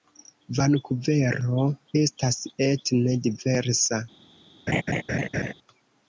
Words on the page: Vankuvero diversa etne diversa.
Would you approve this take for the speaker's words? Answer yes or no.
no